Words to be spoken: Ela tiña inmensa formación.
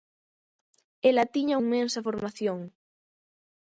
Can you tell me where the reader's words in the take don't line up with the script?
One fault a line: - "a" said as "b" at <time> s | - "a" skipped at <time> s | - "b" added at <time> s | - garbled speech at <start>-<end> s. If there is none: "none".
none